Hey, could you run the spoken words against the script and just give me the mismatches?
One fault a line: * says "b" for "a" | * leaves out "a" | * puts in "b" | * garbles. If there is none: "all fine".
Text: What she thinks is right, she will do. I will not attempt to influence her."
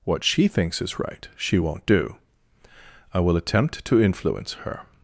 * says "won't" for "will"
* leaves out "not"